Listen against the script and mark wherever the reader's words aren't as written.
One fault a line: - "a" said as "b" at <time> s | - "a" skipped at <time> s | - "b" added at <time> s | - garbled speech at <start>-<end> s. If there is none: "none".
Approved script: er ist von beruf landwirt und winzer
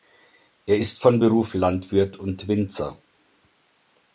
none